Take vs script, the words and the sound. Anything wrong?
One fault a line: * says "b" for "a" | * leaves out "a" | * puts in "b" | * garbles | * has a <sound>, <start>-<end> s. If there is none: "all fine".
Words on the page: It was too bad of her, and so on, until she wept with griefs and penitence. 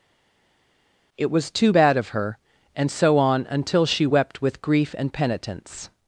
* says "grief" for "griefs"